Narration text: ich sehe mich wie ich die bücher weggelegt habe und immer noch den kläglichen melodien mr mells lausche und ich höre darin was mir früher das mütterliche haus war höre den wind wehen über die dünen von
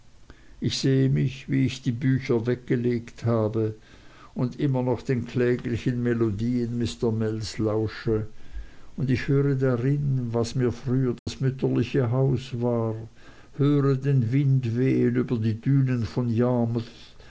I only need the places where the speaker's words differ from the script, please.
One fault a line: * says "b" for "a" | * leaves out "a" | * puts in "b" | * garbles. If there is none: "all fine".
all fine